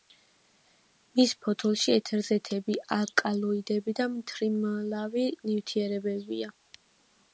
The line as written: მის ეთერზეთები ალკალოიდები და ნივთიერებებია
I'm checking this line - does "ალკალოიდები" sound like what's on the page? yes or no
yes